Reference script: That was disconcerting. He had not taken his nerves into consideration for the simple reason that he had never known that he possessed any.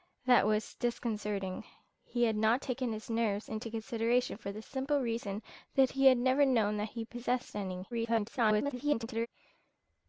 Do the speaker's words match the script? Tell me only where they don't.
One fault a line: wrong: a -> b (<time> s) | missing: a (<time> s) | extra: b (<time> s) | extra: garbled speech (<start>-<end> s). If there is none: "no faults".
extra: garbled speech (7.9-9.3 s)